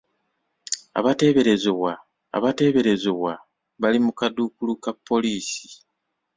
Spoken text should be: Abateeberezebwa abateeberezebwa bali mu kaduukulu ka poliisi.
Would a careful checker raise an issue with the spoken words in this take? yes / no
no